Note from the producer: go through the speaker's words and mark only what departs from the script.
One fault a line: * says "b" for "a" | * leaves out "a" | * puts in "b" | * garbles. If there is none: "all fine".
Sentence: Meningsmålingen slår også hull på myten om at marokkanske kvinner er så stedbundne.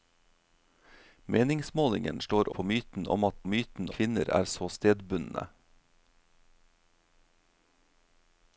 * leaves out "også hull"
* says "myten" for "marokkanske"